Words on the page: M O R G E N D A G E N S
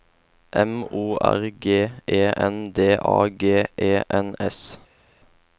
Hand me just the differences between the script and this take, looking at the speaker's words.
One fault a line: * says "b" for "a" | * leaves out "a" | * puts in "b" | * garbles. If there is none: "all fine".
all fine